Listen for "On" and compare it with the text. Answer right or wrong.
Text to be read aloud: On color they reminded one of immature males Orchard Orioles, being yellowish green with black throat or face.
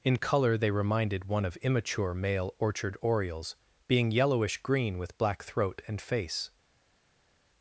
wrong